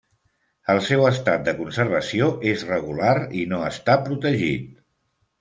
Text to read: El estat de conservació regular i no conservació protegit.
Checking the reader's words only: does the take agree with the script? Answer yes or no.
no